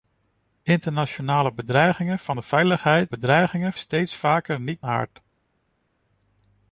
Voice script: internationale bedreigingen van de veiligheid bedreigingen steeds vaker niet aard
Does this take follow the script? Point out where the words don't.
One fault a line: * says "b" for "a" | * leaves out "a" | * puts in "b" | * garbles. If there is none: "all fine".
all fine